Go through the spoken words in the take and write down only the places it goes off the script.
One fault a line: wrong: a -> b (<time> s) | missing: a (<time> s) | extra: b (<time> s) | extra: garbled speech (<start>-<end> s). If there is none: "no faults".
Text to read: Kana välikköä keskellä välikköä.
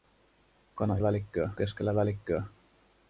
no faults